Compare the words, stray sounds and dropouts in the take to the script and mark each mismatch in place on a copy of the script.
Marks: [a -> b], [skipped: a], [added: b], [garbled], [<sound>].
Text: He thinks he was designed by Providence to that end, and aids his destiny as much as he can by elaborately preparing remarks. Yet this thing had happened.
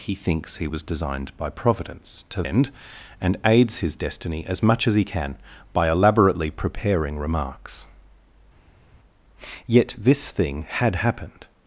He thinks he was designed by Providence to [skipped: that] end, and aids his destiny as much as he can by elaborately preparing remarks. Yet this thing had happened.